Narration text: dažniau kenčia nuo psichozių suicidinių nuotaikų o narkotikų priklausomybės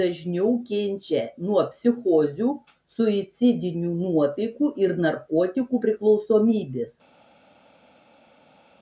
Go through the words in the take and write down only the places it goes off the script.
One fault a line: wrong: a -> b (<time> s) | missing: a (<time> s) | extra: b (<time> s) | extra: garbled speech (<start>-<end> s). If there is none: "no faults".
wrong: o -> ir (4.8 s)